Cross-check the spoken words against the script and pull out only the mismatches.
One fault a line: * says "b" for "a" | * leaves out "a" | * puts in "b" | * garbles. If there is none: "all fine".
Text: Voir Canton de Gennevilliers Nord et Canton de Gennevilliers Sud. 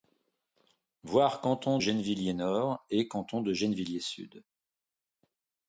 * leaves out "de"